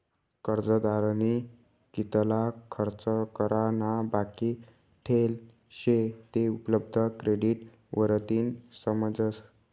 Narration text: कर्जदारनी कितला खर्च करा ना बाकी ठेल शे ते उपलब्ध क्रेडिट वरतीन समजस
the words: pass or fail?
pass